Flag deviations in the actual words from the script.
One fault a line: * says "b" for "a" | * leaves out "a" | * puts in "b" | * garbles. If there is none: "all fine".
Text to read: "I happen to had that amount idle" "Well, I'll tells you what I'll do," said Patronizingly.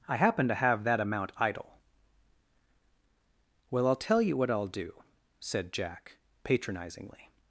* says "have" for "had"
* says "tell" for "tells"
* puts in "Jack"